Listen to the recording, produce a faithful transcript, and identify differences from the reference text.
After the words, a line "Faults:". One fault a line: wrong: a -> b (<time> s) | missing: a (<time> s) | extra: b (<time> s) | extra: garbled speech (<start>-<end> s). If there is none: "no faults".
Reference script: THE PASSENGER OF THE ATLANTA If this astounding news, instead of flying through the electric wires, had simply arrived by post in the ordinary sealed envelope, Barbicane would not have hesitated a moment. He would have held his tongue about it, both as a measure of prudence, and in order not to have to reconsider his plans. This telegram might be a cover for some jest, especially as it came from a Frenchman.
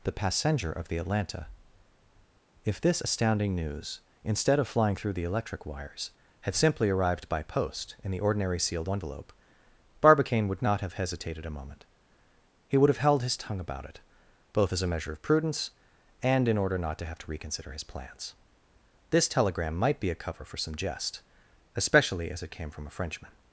THE PASSENGER OF THE ATLANTA If this astounding news, instead of flying through the electric wires, had simply arrived by post in the ordinary sealed envelope, Barbicane would not have hesitated a moment. He would have held his tongue about it, both as a measure of prudence, and in order not to have to reconsider his plans. This telegram might be a cover for some jest, especially as it came from a Frenchman.
Faults:
no faults